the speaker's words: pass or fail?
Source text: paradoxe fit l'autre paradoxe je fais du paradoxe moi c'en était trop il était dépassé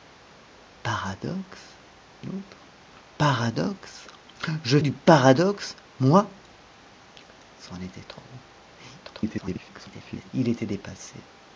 fail